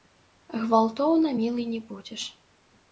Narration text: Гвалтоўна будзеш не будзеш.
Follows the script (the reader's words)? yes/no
no